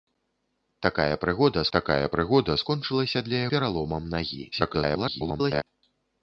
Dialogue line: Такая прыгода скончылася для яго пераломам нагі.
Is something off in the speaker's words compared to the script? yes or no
yes